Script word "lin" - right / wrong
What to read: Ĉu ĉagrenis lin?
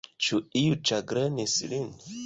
right